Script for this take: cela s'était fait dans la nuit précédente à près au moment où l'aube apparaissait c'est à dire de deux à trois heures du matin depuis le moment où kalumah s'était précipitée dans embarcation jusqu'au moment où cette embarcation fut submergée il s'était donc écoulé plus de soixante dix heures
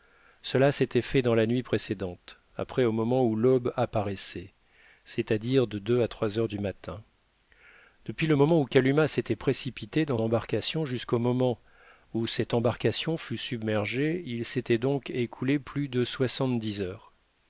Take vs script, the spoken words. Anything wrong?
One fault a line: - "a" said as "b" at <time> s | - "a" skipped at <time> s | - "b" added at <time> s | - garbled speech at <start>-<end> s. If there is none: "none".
none